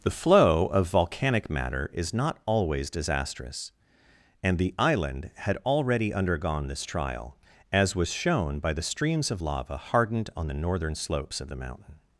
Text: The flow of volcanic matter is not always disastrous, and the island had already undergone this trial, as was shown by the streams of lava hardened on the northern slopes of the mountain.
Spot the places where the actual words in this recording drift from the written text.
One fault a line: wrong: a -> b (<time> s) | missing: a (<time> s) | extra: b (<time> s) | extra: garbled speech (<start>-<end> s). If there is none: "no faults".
no faults